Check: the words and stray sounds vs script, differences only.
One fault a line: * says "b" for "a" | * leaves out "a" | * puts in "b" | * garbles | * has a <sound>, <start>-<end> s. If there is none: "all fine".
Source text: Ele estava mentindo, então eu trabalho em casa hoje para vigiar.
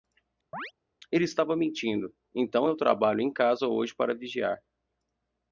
* has a chirp, 0.5-0.7 s